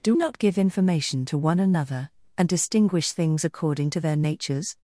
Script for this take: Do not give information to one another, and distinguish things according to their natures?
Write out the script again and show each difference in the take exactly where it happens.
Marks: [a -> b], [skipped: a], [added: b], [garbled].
Do not give information to one another, and distinguish things according to their natures?